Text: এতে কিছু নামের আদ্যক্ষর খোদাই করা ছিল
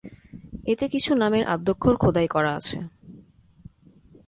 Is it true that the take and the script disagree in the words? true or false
true